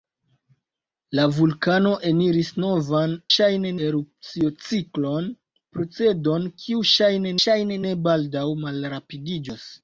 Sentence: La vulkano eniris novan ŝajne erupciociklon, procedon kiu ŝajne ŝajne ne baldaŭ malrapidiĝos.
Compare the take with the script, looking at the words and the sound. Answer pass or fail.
pass